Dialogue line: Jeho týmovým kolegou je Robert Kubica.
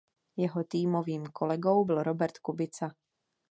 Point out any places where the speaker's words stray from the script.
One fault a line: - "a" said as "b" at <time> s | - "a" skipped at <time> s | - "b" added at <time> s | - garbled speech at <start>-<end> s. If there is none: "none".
- "je" said as "byl" at 1.8 s